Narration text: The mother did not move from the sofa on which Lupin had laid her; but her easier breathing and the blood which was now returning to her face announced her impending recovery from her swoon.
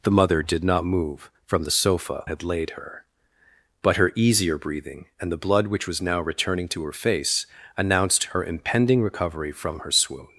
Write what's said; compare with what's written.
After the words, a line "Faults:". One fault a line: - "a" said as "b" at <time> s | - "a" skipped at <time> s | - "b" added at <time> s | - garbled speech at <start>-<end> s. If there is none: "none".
The mother did not move from the sofa had laid her; but her easier breathing and the blood which was now returning to her face announced her impending recovery from her swoon.
Faults:
- "on which Lupin" skipped at 2.2 s